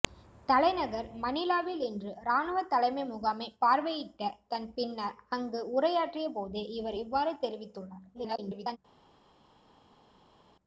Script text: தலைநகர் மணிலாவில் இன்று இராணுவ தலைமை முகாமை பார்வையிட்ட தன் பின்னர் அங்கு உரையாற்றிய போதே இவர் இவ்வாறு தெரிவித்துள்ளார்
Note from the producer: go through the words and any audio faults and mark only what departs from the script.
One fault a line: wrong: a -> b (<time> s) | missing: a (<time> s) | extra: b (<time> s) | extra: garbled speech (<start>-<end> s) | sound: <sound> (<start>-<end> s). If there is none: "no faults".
extra: garbled speech (8.1-8.8 s)